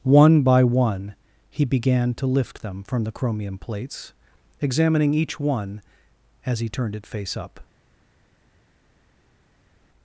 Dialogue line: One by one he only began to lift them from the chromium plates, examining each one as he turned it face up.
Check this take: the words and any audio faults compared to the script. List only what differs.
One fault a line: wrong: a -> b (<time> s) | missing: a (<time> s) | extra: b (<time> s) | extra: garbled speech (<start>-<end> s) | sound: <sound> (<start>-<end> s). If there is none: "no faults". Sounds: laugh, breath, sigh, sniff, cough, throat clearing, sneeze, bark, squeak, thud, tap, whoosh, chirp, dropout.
missing: only (1.6 s)